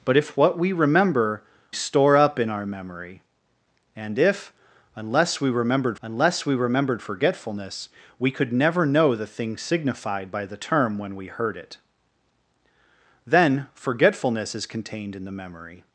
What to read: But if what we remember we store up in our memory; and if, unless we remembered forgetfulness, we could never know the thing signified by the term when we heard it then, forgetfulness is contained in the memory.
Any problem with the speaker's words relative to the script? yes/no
yes